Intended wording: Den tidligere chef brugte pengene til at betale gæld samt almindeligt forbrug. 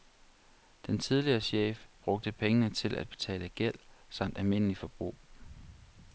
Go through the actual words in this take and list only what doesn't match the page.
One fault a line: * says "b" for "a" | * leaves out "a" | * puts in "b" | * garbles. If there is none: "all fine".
all fine